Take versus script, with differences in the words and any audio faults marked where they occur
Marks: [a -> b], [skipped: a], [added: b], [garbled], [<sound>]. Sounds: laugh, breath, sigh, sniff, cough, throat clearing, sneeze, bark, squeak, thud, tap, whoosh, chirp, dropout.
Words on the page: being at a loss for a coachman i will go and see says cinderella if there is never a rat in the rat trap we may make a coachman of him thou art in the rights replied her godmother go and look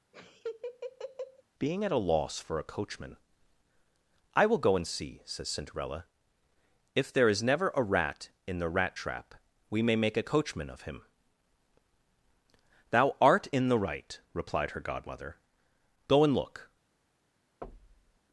[laugh] being at a loss for a coachman i will go and see says cinderella if there is never a rat in the rat trap we may make a coachman of him thou art in the [rights -> right] replied her godmother go and look [thud]